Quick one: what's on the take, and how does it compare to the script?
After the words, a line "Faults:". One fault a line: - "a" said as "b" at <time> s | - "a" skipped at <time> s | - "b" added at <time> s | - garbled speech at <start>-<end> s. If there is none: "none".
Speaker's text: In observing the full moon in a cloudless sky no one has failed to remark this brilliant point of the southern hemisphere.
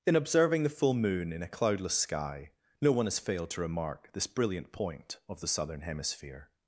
In observing the full moon in a cloudless sky no one has failed to remark this brilliant point of the southern hemisphere.
Faults:
none